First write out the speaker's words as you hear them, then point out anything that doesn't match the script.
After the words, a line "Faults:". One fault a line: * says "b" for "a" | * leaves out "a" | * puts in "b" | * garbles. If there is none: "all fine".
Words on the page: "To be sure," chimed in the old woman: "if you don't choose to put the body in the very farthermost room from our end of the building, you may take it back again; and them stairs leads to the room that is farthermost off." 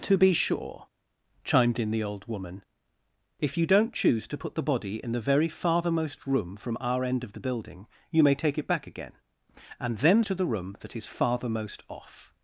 "To be sure," chimed in the old woman: "if you don't choose to put the body in the very farthermost room from our end of the building, you may take it back again; and them to the room that is farthermost off."
Faults:
* leaves out "stairs leads"